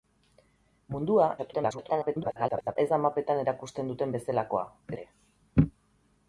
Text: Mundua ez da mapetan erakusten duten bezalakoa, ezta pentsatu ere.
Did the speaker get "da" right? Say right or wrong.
right